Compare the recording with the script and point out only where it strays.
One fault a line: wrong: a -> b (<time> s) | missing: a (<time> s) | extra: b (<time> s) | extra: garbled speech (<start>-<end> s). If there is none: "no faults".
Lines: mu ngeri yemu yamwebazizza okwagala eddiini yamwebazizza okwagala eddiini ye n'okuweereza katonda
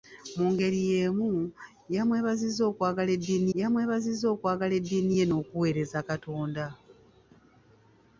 no faults